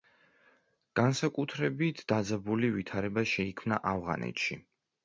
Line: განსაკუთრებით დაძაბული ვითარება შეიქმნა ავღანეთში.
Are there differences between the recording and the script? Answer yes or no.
no